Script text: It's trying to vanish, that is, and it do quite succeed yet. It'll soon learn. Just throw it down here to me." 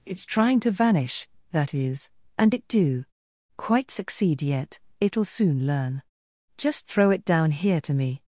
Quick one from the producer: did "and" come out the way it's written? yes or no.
yes